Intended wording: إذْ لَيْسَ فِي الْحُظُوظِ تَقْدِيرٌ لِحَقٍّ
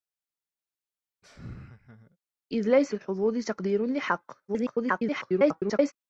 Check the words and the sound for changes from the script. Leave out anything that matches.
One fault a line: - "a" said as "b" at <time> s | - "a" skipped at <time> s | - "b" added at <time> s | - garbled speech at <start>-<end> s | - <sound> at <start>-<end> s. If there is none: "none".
- laugh at 1.2-2.2 s
- "فِي" skipped at 2.9 s
- garbled speech at 4.5-5.9 s